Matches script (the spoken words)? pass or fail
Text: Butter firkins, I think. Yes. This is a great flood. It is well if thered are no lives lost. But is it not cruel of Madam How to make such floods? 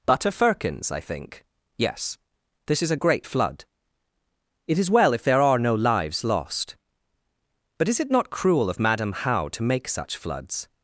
fail